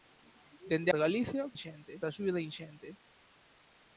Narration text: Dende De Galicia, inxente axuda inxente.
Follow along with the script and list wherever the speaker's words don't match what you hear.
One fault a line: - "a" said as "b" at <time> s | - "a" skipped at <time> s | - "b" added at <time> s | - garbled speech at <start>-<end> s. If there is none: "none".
none